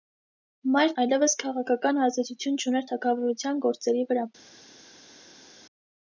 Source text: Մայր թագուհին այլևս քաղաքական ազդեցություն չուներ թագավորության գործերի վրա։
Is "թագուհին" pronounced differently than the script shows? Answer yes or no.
yes